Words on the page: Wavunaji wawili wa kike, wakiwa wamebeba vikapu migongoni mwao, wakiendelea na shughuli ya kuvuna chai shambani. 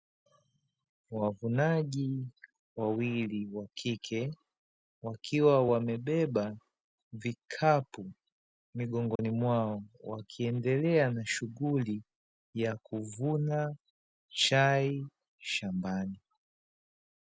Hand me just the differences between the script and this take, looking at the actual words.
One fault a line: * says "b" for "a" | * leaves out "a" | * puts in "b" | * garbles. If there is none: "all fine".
all fine